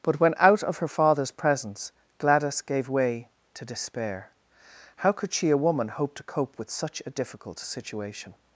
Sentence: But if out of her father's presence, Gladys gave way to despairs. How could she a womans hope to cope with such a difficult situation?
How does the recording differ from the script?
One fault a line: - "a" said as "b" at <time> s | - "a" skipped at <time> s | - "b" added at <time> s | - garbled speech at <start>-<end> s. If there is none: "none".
- "if" said as "when" at 0.2 s
- "despairs" said as "despair" at 3.6 s
- "womans" said as "woman" at 5.6 s